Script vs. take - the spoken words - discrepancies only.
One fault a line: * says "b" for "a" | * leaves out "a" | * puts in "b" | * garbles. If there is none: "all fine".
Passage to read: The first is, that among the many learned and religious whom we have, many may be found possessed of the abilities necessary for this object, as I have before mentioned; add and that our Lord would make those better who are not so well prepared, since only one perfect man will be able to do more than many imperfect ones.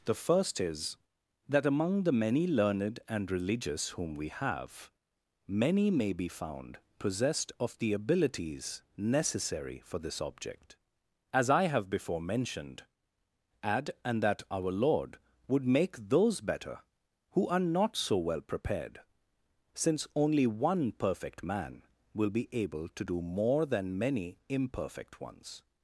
all fine